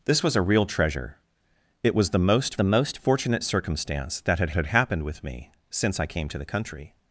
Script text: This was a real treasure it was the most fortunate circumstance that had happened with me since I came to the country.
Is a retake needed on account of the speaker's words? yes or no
yes